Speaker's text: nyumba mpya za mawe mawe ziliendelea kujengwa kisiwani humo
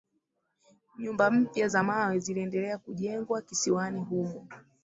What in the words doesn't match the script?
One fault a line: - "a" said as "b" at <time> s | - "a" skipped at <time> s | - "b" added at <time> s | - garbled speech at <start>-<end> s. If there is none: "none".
- "mawe" skipped at 2.2 s